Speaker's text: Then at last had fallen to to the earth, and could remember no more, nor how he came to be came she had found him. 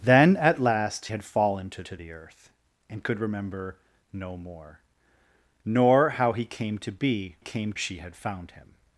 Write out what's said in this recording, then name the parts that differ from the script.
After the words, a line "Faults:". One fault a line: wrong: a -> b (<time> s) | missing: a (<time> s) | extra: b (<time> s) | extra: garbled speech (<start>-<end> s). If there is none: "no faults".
Then at last had fallen to to the earth, and could remember no more, nor how he came to be came she had found him.
Faults:
no faults